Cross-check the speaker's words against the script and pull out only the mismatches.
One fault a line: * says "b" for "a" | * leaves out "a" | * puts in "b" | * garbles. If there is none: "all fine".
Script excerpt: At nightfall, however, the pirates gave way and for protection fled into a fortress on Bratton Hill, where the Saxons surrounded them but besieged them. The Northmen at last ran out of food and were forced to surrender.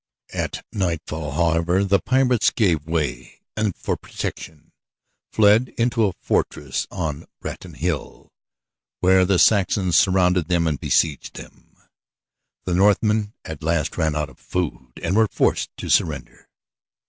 * says "and" for "but"